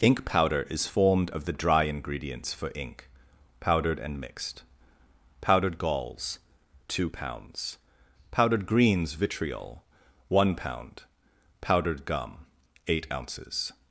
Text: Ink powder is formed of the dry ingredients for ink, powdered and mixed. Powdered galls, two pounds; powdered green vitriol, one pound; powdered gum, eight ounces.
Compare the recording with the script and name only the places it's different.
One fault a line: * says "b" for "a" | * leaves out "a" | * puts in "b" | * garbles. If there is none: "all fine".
* says "greens" for "green"